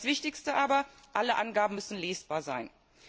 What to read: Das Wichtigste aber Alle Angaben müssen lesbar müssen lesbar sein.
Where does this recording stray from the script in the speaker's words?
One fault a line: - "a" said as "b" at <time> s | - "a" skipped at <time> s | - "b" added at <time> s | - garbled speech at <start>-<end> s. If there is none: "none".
- "müssen lesbar" skipped at 2.4 s